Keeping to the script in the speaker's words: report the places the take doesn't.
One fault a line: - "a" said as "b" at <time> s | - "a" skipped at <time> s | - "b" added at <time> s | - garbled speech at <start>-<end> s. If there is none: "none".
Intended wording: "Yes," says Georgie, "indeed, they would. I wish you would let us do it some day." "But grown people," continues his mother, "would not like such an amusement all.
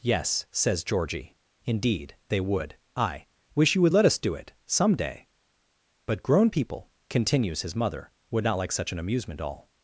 none